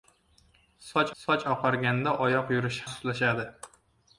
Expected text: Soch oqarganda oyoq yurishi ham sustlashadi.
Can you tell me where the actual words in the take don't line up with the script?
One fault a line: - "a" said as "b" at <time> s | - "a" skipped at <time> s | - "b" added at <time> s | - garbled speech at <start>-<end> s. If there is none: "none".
- "soch" added at 1.2 s
- "ham" skipped at 2.8 s